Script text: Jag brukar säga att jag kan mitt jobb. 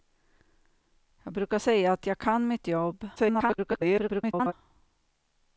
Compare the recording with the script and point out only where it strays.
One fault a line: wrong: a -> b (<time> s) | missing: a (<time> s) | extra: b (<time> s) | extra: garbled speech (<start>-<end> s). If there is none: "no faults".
extra: garbled speech (3.2-4.5 s)